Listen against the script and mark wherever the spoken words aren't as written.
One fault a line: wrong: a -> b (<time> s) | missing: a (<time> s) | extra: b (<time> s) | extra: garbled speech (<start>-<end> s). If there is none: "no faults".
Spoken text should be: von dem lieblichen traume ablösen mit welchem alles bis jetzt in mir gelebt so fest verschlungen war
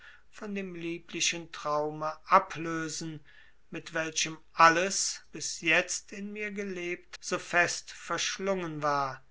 no faults